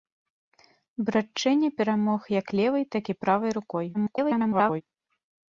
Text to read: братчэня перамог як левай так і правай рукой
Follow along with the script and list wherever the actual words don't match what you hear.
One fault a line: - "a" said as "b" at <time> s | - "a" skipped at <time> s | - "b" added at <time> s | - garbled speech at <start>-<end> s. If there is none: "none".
- garbled speech at 3.9-4.8 s